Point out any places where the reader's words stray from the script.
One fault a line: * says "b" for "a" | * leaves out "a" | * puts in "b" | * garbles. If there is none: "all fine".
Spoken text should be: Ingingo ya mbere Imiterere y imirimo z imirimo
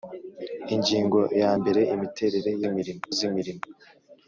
all fine